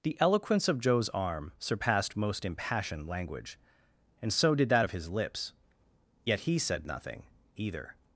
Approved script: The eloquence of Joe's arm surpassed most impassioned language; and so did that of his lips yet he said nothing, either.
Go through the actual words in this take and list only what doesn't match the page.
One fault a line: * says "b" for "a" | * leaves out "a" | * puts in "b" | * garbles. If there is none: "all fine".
all fine